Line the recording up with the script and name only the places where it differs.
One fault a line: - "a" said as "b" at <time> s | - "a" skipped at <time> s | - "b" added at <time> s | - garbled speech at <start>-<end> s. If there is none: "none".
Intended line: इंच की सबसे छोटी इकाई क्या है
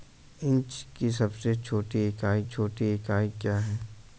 - "छोटी इकाई" added at 2.4 s